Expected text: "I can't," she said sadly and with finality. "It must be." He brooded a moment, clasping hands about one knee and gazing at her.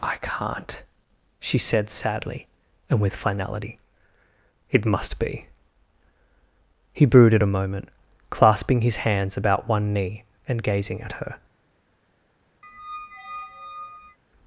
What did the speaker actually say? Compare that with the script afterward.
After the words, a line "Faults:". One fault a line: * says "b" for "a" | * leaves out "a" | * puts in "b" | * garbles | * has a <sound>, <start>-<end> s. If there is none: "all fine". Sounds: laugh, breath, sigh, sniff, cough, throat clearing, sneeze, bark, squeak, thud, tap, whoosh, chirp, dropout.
"I can't," she said sadly and with finality. "It must be." He brooded a moment, clasping his hands about one knee and gazing at her.
Faults:
* puts in "his"
* has a squeak, 12.6-14.2 s